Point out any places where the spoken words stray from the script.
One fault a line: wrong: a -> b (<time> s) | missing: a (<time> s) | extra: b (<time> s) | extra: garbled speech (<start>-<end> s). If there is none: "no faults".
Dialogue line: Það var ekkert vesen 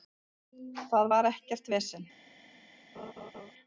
no faults